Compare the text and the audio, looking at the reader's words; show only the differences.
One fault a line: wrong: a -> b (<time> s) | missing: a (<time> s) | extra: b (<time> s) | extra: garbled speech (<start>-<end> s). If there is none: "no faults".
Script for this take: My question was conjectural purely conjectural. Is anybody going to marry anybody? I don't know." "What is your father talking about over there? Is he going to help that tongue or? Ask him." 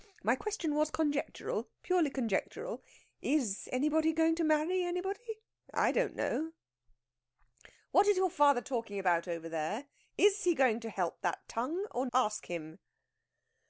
no faults